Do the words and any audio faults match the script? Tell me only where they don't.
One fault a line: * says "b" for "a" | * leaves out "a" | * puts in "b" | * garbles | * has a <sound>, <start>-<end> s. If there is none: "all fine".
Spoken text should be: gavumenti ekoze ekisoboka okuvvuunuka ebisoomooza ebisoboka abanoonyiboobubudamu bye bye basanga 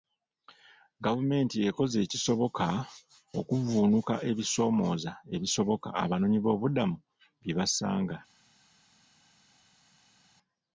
* leaves out "bye"